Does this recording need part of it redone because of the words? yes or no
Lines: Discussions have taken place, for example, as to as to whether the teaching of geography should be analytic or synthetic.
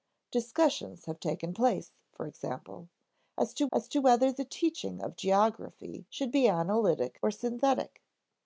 no